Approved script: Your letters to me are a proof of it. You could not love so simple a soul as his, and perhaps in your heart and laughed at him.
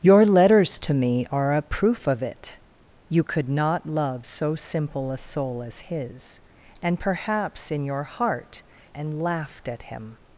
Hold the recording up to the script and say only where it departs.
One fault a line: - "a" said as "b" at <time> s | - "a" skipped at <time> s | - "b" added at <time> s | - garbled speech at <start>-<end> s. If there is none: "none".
none